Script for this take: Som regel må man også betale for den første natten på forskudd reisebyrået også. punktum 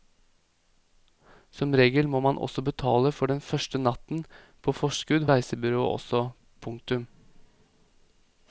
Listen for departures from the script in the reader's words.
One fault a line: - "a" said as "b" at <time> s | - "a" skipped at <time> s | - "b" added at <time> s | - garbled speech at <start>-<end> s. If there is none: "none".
none